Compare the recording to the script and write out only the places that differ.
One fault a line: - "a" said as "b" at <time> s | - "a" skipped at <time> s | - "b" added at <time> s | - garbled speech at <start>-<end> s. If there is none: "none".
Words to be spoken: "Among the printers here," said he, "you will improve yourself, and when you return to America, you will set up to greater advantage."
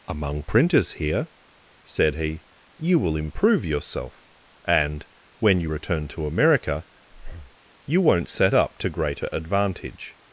- "the" skipped at 0.4 s
- "will" said as "won't" at 8.0 s